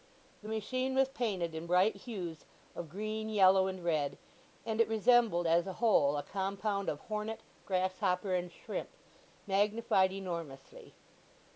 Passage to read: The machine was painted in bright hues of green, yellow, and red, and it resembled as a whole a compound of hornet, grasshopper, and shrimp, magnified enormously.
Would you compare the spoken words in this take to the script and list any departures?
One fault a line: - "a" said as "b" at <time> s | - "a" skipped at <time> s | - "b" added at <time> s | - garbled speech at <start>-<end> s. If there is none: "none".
none